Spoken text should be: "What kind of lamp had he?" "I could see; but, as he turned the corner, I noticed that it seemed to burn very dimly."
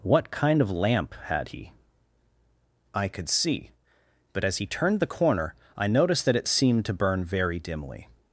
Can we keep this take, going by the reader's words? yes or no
yes